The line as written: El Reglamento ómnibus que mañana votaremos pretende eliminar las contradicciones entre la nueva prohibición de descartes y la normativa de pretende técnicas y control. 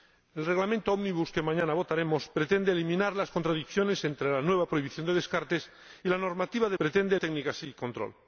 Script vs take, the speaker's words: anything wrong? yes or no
no